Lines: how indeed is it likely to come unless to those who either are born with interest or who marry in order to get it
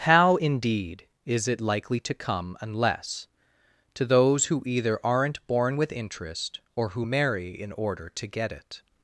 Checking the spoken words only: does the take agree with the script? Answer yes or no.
no